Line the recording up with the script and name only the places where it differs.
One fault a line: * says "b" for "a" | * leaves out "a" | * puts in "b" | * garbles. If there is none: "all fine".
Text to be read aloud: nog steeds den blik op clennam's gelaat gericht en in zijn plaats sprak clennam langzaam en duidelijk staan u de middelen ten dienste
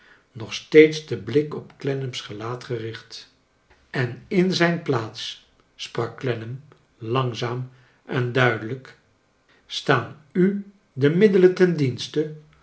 all fine